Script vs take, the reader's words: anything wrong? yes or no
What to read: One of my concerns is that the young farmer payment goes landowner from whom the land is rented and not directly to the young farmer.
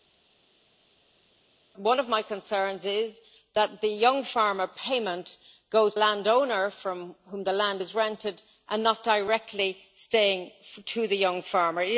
no